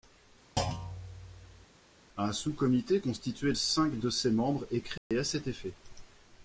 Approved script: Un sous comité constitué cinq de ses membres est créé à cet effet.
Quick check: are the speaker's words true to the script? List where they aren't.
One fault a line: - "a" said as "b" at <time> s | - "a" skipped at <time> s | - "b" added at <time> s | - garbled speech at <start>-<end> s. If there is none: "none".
none